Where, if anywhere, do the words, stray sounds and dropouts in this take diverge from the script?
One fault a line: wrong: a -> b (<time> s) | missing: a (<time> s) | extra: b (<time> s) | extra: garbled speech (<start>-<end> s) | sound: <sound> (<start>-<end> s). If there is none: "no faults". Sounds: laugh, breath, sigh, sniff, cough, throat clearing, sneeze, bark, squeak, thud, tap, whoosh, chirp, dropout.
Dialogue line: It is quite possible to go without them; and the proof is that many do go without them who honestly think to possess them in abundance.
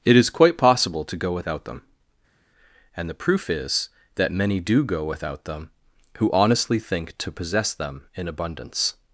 no faults